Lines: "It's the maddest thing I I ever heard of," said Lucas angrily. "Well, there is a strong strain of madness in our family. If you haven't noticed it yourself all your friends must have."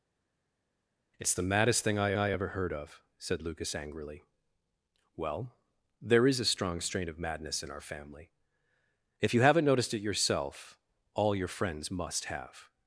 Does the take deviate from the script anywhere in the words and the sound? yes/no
no